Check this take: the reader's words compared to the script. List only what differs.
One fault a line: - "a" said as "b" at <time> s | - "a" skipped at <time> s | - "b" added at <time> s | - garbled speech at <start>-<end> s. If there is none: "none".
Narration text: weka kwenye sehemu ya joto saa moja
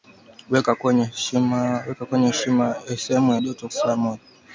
none